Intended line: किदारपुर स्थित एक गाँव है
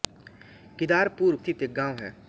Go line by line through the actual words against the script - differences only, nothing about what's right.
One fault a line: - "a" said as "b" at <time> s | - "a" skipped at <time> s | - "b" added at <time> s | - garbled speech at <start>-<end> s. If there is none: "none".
none